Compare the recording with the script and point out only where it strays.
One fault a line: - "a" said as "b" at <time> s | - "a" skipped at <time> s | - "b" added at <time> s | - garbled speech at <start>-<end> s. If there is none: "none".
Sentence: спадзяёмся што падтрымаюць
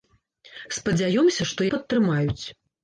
none